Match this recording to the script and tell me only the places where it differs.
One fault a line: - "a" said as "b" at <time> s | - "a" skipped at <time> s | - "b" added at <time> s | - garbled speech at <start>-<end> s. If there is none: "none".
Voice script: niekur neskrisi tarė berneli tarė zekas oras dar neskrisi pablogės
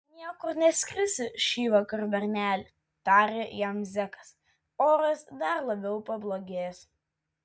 - "tarė" said as "šįvakar" at 1.5 s
- "jam" added at 3.6 s
- "neskrisi" said as "labiau" at 5.7 s